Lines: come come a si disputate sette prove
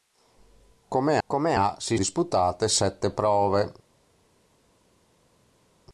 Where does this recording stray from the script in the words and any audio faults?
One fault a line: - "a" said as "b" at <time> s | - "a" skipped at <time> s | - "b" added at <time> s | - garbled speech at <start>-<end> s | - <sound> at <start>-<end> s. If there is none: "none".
none